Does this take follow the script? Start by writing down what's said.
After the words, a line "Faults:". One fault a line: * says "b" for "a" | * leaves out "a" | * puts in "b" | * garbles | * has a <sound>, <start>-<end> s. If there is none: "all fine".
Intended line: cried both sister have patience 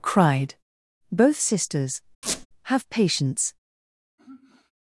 cried both sisters have patience
Faults:
* says "sisters" for "sister"
* has a squeak, 2.2-2.5 s
* has a sigh, 4.2-4.7 s